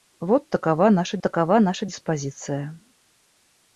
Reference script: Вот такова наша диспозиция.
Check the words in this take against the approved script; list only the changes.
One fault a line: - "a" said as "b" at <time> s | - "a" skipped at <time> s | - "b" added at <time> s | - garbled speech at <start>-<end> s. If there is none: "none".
- "такова наша" added at 1.2 s